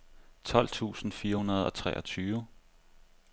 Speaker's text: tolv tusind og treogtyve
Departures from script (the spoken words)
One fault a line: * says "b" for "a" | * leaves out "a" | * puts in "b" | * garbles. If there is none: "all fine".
* puts in "fire hundrede"